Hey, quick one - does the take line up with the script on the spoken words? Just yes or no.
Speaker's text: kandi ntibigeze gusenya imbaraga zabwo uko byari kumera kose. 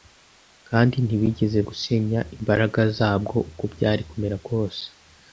yes